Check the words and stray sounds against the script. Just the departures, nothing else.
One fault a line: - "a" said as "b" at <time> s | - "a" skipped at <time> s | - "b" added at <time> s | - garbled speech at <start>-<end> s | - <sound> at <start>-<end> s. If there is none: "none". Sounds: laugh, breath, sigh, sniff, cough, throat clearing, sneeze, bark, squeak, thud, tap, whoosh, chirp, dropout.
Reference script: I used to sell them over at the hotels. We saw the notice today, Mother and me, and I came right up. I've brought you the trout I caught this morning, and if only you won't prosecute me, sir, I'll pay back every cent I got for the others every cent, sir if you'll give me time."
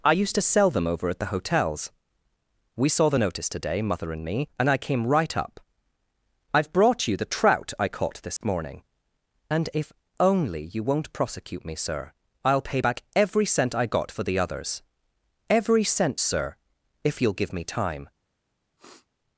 - dropout at 8.4-8.4 s
- sniff at 18.8-19.1 s